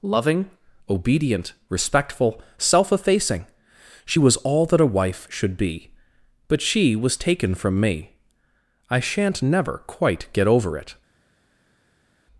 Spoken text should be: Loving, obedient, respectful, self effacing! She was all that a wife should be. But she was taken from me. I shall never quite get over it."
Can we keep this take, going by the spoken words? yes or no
no